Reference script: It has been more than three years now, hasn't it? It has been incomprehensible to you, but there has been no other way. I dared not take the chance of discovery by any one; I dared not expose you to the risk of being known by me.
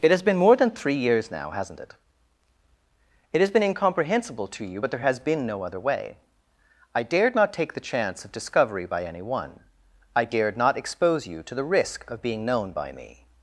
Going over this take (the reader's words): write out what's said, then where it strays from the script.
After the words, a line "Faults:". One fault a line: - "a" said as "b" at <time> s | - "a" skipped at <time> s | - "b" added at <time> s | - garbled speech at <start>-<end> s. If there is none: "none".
It has been more than three years now, hasn't it? It has been incomprehensible to you, but there has been no other way. I dared not take the chance of discovery by any one; I dared not expose you to the risk of being known by me.
Faults:
none